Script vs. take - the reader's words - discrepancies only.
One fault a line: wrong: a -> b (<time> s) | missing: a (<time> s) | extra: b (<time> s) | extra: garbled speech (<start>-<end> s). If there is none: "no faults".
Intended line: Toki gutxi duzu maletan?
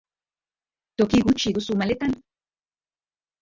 no faults